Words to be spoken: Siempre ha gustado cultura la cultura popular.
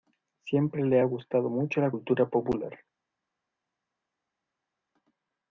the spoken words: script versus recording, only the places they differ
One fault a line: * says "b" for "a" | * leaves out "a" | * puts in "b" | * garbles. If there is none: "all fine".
* puts in "le"
* says "mucho" for "cultura"